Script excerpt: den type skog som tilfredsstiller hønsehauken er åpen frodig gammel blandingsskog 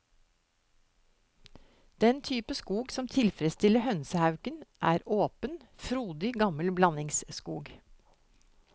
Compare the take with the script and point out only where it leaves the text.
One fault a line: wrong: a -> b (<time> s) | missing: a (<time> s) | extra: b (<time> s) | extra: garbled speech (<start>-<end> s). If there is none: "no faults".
no faults